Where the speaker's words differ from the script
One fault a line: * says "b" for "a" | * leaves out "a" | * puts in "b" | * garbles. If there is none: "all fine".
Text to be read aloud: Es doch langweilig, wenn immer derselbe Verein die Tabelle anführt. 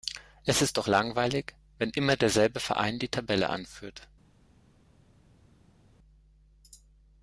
* puts in "ist"